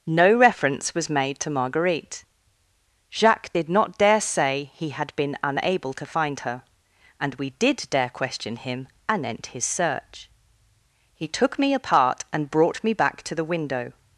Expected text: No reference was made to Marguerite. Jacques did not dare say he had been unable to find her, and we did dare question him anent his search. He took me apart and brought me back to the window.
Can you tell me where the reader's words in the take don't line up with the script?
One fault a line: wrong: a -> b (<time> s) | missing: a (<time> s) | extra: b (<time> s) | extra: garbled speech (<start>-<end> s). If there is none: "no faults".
no faults